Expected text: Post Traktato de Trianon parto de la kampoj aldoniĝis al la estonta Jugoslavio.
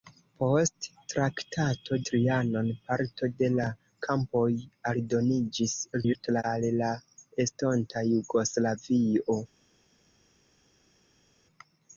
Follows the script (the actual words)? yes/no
no